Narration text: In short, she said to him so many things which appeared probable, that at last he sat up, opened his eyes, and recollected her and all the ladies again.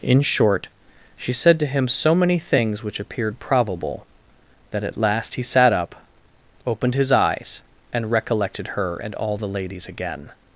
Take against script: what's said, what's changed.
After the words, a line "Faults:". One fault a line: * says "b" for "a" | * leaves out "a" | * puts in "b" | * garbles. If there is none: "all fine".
In short, she said to him so many things which appeared probable, that at last he sat up, opened his eyes, and recollected her and all the ladies again.
Faults:
all fine